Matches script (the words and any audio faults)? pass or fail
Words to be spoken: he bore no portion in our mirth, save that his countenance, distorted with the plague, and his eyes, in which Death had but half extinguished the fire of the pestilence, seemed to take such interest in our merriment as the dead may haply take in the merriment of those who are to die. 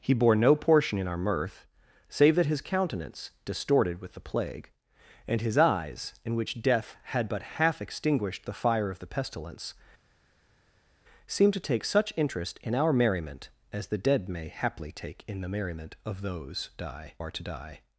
fail